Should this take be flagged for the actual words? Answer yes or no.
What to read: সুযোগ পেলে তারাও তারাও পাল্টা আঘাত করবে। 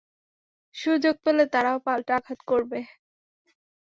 yes